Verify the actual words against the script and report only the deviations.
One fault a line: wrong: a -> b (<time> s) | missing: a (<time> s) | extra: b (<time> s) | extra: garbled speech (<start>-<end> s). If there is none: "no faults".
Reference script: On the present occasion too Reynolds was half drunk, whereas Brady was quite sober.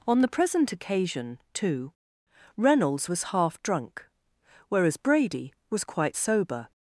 no faults